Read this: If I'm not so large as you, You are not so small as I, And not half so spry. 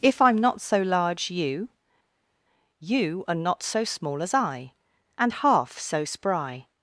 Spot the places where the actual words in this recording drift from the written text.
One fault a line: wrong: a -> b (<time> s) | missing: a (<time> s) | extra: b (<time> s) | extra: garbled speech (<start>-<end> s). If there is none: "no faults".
missing: as (1.3 s)
missing: not (5.3 s)